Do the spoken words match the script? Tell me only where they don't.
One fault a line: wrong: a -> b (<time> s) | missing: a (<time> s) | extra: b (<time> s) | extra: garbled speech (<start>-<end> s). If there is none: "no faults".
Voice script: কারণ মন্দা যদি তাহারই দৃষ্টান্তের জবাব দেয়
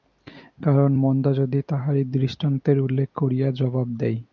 extra: উল্লেখ করিয়া (2.8 s)